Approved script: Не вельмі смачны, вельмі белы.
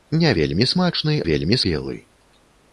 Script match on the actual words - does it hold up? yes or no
yes